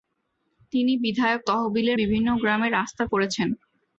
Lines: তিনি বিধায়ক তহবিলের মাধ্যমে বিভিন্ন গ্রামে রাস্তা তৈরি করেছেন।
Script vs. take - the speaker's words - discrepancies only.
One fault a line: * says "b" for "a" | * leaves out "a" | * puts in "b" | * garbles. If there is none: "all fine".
* leaves out "মাধ্যমে"
* leaves out "তৈরি"